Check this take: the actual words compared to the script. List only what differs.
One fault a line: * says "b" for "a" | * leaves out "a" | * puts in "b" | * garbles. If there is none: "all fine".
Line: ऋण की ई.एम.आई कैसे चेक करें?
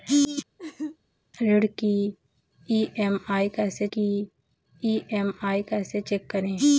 * puts in "की ई.एम.आई कैसे"